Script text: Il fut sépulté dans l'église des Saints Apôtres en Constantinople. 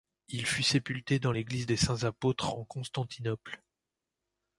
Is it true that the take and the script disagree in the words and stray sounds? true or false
false